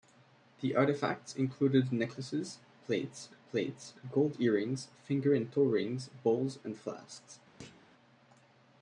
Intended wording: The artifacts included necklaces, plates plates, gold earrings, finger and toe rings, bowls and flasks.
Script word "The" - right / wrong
right